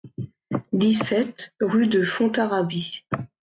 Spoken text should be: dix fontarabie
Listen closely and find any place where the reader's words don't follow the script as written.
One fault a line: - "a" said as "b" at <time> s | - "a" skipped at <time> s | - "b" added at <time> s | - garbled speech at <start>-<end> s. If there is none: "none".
- "sept rue de" added at 1.1 s